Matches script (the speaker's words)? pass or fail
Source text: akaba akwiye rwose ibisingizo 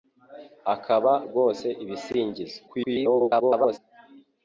fail